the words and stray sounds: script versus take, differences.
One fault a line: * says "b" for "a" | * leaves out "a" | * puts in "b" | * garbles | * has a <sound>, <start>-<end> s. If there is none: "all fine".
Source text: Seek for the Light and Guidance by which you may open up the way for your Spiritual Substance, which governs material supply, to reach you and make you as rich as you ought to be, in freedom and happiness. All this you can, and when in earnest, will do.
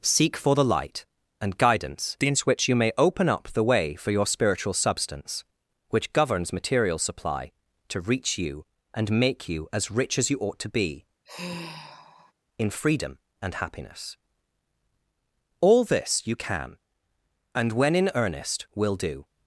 * says "in" for "by"
* has a sigh, 11.2-12.3 s